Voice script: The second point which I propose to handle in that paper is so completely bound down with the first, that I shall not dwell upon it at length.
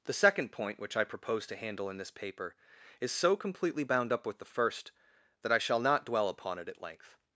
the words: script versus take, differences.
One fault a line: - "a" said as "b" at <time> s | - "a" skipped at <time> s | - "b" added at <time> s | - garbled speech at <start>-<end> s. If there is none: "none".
- "that" said as "this" at 2.0 s
- "down" said as "up" at 4.1 s